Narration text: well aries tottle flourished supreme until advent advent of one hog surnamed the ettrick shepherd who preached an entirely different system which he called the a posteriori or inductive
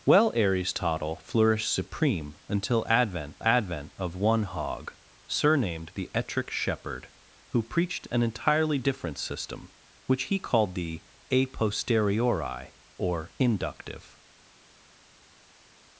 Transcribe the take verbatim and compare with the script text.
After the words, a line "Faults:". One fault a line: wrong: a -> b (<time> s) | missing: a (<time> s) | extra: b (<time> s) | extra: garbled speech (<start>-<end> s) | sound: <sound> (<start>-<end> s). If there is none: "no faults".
well aries tottle flourished supreme until advent advent of one hog surnamed the ettrick shepherd who preached an entirely different system which he called the a posteriori or inductive
Faults:
no faults